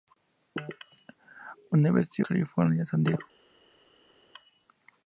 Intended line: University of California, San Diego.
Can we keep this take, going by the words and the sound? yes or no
no